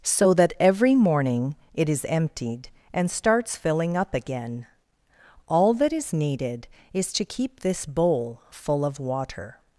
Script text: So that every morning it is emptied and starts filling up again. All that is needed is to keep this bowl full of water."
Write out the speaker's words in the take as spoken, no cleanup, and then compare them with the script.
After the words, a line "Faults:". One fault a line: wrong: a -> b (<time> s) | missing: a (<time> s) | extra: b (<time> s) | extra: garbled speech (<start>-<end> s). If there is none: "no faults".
So that every morning it is emptied and starts filling up again. All that is needed is to keep this bowl full of water."
Faults:
no faults